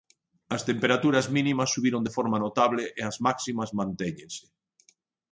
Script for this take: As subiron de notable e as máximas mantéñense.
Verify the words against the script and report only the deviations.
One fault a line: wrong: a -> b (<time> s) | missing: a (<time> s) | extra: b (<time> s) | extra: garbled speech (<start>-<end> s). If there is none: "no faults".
extra: temperaturas mínimas (0.7 s)
extra: forma (2.2 s)